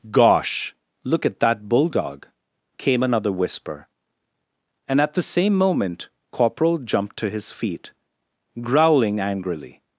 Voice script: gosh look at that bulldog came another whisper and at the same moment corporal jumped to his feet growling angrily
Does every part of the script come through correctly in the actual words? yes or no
yes